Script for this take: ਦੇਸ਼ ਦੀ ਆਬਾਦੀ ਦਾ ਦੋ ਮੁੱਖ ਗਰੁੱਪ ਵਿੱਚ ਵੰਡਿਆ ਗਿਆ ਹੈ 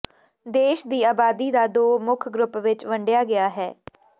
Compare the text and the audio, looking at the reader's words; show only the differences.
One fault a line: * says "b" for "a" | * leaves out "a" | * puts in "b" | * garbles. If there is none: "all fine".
all fine